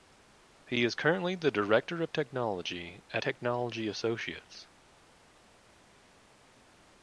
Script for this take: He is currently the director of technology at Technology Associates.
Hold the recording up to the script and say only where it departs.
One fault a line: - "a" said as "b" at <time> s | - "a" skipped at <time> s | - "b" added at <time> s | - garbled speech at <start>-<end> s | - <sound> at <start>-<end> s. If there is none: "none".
none